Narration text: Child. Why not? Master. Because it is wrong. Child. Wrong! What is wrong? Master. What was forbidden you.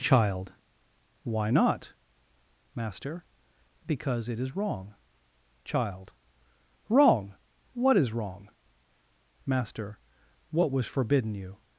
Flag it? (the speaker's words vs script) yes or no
no